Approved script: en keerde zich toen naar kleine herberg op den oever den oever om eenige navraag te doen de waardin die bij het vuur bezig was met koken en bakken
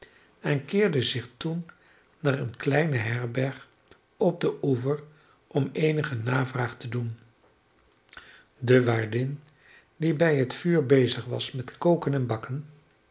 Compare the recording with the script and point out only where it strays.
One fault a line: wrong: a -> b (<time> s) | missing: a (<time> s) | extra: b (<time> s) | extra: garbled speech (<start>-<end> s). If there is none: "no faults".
extra: eene (2.4 s)
missing: den oever (5.0 s)